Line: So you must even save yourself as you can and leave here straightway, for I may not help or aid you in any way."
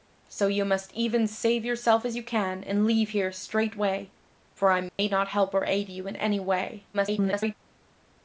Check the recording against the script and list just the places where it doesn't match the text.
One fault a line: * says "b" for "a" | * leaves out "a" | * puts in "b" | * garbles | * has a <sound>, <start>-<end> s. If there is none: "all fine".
* has a dropout, 4.9-5.0 s
* garbles